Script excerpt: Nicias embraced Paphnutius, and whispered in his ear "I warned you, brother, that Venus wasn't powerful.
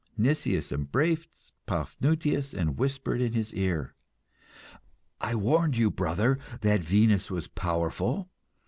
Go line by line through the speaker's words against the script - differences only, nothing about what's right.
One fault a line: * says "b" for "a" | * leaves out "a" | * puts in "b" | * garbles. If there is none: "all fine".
* says "was" for "wasn't"